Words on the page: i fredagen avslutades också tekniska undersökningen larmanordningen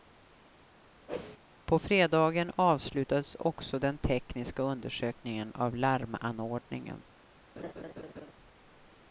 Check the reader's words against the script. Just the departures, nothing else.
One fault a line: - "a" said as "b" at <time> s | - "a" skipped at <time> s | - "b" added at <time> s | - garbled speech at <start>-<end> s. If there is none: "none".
- "i" said as "på" at 1.6 s
- "den" added at 3.8 s
- "av" added at 5.5 s